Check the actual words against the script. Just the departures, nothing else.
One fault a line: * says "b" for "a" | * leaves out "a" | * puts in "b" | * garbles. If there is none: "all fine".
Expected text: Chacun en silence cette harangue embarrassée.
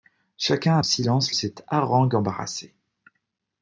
all fine